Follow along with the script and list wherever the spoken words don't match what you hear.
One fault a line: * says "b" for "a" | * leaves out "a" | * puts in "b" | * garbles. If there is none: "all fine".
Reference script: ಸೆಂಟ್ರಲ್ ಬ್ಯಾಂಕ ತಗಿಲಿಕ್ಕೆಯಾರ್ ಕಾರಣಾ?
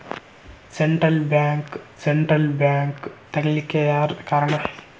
* puts in "ಸೆಂಟ್ರಲ್ ಬ್ಯಾಂಕ"